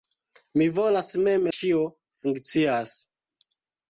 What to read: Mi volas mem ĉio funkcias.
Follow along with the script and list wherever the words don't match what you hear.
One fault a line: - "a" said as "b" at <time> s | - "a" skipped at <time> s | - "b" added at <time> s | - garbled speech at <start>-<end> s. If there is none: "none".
none